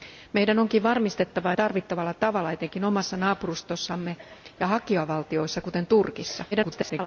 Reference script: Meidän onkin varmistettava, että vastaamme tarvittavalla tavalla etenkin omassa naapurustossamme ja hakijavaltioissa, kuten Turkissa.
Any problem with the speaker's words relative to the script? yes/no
yes